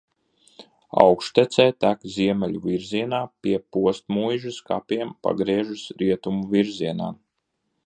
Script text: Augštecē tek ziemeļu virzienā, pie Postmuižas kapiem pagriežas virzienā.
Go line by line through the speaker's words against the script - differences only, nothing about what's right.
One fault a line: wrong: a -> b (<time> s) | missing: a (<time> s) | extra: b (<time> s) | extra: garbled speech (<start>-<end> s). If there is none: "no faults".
extra: rietumu (6.0 s)